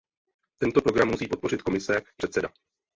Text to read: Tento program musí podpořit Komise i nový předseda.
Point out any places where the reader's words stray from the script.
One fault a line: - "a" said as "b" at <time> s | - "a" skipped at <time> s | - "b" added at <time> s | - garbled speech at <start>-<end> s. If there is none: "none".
- "nový" skipped at 2.2 s